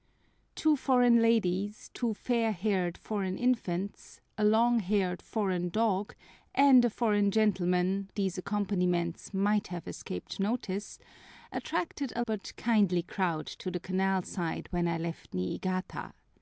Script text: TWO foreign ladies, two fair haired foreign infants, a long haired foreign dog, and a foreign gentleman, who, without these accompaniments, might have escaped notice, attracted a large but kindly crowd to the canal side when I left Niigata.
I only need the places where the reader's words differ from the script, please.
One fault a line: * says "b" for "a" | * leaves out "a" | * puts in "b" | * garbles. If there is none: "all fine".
* leaves out "who without"
* leaves out "large"